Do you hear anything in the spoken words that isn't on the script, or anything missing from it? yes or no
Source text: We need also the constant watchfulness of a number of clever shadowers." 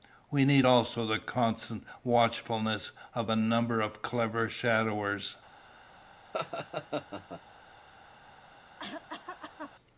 no